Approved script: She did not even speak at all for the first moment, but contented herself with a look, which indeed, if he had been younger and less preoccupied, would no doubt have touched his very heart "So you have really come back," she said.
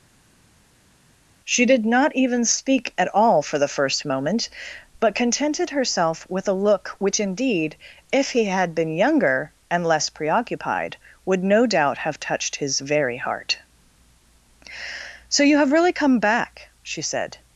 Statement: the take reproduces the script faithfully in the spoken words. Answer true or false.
true